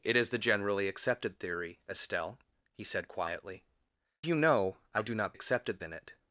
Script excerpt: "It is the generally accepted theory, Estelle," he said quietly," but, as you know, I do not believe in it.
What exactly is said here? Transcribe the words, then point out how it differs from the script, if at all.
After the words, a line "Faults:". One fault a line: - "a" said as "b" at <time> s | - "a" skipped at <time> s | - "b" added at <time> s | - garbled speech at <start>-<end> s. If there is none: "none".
"It is the generally accepted theory, Estelle," he said quietly," you know, I do not accepted in it.
Faults:
- "but as" skipped at 3.6 s
- "believe" said as "accepted" at 5.3 s